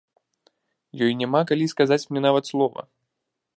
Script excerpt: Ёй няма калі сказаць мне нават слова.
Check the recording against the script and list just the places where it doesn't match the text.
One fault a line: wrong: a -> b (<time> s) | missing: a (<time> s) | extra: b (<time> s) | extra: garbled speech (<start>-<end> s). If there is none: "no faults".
no faults